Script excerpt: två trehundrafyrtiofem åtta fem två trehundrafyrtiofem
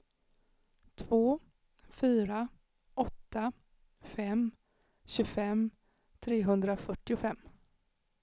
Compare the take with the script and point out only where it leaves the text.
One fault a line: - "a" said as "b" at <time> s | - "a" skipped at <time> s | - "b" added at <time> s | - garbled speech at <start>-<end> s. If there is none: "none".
- "trehundrafyrtiofem" said as "fyra" at 1.9 s
- "två" said as "tjugofem" at 5.0 s